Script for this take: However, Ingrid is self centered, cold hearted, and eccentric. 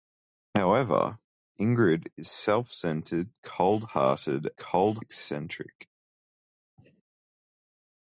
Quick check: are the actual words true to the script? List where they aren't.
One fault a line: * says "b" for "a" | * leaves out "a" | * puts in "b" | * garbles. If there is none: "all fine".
* says "cold" for "and"